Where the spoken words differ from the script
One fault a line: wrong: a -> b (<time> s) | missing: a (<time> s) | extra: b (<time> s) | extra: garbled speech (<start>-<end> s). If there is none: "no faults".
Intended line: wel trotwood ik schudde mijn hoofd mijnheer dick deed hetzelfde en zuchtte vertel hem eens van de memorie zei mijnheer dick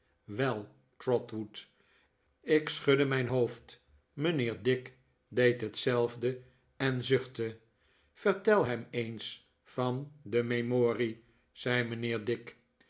no faults